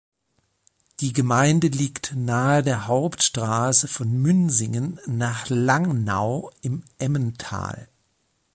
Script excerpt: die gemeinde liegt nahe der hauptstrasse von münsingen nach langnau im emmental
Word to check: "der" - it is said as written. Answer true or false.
true